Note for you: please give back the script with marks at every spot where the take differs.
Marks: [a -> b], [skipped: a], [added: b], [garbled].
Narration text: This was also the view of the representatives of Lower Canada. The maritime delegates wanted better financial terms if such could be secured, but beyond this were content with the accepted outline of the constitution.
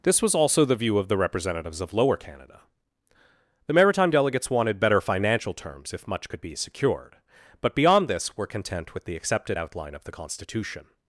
This was also the view of the representatives of Lower Canada. The maritime delegates wanted better financial terms if [such -> much] could be secured, but beyond this were content with the accepted outline of the constitution.